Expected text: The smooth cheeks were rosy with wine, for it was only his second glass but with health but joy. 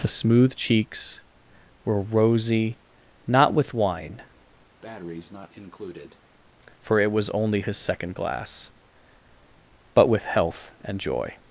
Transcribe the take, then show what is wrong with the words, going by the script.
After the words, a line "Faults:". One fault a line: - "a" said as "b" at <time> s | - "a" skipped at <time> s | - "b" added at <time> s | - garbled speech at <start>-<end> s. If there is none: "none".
The smooth cheeks were rosy not with wine, for it was only his second glass but with health and joy.
Faults:
- "not" added at 3.3 s
- "but" said as "and" at 10.8 s